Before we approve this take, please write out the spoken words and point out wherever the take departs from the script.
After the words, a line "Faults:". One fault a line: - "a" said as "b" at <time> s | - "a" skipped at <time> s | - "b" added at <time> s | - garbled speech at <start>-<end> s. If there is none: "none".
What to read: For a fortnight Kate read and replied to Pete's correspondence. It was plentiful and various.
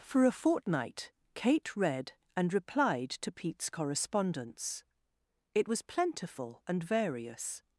For a fortnight Kate read and replied to Pete's correspondence. It was plentiful and various.
Faults:
none